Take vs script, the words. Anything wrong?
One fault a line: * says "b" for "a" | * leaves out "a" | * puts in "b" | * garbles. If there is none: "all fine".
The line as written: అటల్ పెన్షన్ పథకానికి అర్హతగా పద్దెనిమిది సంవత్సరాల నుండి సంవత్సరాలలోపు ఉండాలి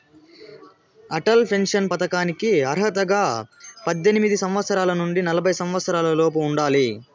* puts in "నలభై"